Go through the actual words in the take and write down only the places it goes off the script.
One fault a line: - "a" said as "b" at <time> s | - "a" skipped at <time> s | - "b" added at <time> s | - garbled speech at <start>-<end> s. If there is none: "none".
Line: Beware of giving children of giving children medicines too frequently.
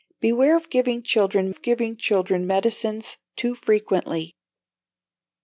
none